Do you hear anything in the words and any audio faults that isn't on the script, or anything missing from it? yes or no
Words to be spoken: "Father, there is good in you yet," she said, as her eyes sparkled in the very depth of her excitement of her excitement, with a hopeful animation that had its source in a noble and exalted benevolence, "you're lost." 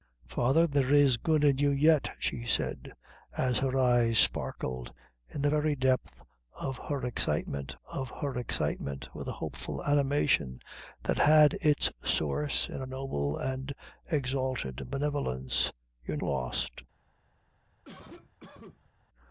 yes